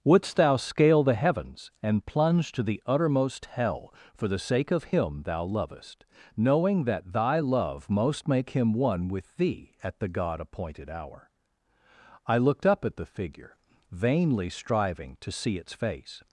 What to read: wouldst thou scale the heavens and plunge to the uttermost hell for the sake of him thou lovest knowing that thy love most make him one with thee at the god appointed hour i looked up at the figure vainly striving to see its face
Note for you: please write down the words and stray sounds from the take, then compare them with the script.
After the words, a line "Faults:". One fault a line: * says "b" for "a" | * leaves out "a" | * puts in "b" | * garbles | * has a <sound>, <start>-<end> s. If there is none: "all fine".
wouldst thou scale the heavens and plunge to the uttermost hell for the sake of him thou lovest knowing that thy love most make him one with thee at the god appointed hour i looked up at the figure vainly striving to see its face
Faults:
all fine